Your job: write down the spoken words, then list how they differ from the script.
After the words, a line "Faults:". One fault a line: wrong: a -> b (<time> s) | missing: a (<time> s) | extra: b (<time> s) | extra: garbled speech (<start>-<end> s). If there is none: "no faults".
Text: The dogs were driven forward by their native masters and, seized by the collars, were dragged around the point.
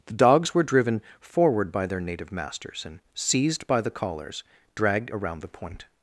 The dogs were driven forward by their native masters and, seized by the collars, dragged around the point.
Faults:
missing: were (4.4 s)